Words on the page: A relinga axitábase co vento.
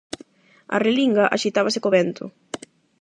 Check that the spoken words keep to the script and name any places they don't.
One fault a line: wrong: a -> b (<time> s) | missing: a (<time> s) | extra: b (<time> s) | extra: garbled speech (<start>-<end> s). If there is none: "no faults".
no faults